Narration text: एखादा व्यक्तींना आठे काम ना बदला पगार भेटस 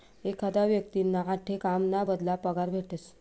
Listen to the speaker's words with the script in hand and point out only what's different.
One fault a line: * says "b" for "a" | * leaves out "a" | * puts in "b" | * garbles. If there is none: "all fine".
all fine